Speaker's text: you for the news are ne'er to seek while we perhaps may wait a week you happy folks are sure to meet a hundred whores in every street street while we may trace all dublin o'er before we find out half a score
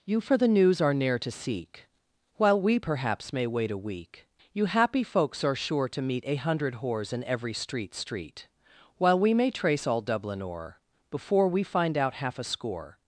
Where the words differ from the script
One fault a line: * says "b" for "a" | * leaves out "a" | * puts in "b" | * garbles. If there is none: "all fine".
all fine